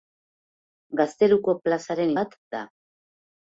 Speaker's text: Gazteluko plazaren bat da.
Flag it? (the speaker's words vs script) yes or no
no